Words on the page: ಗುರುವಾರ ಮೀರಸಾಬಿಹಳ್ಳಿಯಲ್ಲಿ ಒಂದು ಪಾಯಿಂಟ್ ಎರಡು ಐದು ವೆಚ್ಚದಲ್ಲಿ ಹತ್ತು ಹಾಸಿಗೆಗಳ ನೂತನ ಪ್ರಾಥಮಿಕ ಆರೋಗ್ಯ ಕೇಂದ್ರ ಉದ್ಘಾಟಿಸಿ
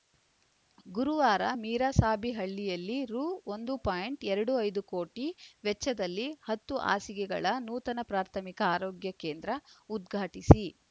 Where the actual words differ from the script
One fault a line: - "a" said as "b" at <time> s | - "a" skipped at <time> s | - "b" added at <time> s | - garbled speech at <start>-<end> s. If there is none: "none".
- "ರು" added at 3.0 s
- "ಕೋಟಿ" added at 4.9 s